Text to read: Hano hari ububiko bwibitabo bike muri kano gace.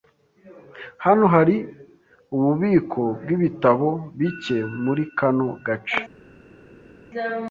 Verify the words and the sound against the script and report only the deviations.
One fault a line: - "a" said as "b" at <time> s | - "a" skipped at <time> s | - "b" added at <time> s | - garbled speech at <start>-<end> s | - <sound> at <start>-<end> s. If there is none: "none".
none